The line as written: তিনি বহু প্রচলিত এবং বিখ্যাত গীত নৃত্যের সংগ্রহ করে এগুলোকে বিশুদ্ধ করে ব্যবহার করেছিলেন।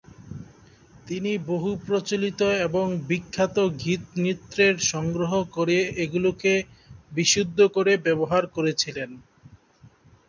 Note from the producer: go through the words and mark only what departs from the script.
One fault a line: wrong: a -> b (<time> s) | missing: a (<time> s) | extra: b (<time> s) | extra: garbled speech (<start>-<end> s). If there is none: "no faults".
no faults